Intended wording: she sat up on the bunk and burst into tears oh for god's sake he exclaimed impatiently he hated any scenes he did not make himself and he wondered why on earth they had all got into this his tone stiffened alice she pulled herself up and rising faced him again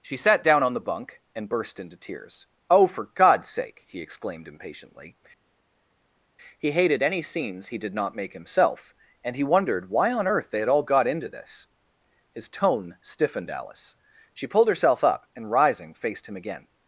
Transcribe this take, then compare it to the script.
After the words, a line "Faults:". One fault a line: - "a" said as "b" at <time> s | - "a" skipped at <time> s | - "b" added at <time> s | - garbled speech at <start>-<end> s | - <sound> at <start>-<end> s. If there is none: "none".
she sat down on the bunk and burst into tears oh for god's sake he exclaimed impatiently he hated any scenes he did not make himself and he wondered why on earth they had all got into this his tone stiffened alice she pulled herself up and rising faced him again
Faults:
- "up" said as "down" at 0.4 s